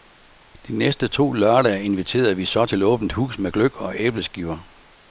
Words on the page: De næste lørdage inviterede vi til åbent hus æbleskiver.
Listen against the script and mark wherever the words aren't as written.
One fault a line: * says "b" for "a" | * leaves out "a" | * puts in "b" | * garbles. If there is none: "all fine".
* puts in "to"
* puts in "så"
* puts in "med gløgg og"